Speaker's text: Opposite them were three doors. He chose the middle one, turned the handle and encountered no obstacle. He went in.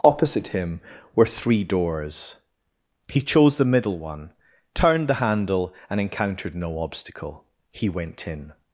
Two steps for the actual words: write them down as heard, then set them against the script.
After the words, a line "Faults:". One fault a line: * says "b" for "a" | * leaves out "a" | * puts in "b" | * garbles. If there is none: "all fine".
Opposite him were three doors. He chose the middle one, turned the handle and encountered no obstacle. He went in.
Faults:
* says "him" for "them"